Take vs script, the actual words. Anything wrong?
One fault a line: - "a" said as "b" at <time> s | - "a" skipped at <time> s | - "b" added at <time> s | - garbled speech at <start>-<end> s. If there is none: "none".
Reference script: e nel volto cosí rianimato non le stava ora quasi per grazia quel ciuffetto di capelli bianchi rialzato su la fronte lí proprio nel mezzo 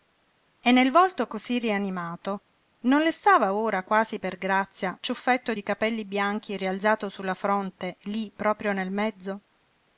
- "quel" skipped at 5.0 s